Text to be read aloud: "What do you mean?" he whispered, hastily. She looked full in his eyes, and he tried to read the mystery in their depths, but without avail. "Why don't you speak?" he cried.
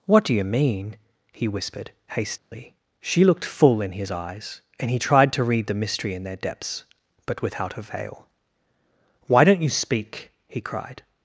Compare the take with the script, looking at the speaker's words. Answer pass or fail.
pass